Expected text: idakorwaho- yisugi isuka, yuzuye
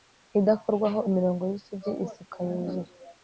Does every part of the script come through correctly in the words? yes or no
no